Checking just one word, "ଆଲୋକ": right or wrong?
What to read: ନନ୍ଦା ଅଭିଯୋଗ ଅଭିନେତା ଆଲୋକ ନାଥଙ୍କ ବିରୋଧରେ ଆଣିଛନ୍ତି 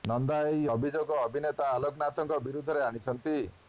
right